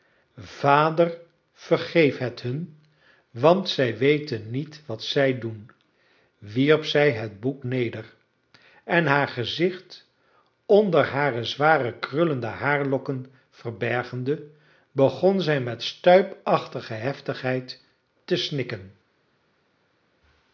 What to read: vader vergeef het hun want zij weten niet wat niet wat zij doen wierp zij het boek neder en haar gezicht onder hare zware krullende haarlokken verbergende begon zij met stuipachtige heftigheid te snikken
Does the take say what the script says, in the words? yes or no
no